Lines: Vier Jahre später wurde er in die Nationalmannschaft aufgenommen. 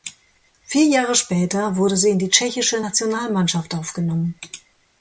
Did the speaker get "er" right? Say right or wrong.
wrong